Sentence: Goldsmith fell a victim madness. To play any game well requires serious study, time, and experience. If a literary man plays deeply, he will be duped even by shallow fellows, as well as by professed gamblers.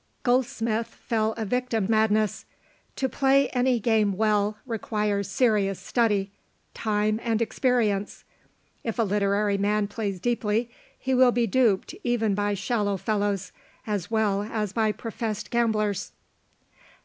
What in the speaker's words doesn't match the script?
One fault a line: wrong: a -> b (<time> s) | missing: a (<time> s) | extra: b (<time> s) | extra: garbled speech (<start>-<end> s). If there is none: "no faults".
no faults